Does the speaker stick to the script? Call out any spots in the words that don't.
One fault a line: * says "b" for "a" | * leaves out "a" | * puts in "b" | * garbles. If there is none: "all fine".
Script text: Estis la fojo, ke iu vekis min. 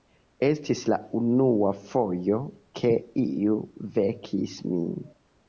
* puts in "unua"